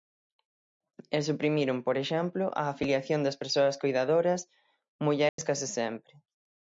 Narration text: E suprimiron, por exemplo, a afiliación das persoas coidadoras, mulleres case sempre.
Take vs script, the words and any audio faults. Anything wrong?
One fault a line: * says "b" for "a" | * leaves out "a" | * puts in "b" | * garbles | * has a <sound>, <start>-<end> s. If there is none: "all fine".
* has a dropout, 5.3-5.4 s